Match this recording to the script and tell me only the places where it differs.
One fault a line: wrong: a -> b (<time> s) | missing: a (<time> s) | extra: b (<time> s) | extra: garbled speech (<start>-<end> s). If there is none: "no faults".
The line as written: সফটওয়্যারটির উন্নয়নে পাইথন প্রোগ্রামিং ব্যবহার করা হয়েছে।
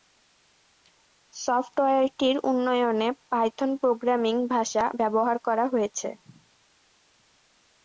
extra: ভাষা (4.5 s)